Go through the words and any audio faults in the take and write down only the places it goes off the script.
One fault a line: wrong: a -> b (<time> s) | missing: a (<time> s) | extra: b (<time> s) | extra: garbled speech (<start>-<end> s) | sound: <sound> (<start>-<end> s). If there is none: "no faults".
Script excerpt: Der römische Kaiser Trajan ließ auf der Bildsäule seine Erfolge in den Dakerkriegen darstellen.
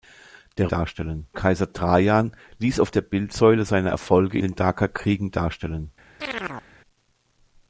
wrong: römische -> darstellen (0.7 s)
missing: in (4.4 s)
sound: chirp (6.2-6.7 s)